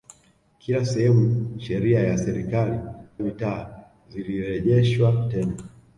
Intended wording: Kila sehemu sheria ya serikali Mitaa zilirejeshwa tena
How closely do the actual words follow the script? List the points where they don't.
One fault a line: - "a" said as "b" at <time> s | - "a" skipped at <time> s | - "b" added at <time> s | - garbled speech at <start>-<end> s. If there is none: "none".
none